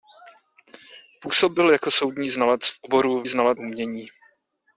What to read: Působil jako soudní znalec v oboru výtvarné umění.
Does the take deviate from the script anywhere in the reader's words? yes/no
yes